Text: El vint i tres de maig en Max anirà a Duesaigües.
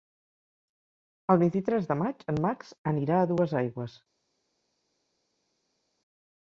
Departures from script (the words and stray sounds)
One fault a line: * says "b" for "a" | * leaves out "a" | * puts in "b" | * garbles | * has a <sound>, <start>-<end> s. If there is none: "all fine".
all fine